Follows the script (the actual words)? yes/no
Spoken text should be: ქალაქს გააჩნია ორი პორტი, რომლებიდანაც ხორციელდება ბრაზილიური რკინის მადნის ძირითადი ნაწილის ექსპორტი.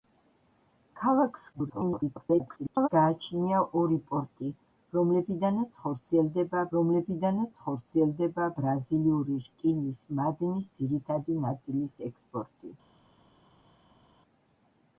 no